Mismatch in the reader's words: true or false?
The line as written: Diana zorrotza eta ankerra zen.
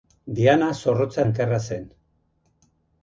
true